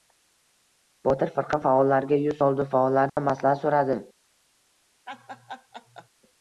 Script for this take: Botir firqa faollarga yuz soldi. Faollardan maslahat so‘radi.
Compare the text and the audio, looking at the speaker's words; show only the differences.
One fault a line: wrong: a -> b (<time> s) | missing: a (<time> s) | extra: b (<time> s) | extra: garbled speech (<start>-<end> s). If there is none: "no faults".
no faults